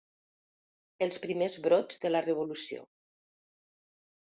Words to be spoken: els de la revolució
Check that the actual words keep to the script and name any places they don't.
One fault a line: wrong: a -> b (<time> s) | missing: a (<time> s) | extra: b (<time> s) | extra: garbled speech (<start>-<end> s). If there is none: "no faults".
extra: primers brots (1.2 s)